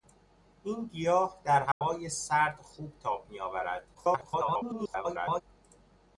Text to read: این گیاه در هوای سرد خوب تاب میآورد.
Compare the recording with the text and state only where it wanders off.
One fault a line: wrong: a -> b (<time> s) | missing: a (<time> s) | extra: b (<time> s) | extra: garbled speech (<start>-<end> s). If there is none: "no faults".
extra: garbled speech (3.9-5.4 s)